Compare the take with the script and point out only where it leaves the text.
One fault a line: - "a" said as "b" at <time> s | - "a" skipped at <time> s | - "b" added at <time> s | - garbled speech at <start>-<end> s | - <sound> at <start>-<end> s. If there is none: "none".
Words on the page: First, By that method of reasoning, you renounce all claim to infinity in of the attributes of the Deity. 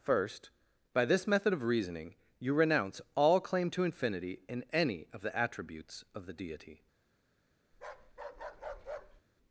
- "that" said as "this" at 1.1 s
- "any" added at 4.7 s
- bark at 7.7-9.2 s